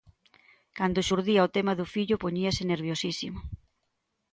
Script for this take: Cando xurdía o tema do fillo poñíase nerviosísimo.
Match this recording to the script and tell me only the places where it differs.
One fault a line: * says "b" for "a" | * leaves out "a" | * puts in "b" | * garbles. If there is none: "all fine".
all fine